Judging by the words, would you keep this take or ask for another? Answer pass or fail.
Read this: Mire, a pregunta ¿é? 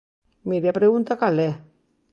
fail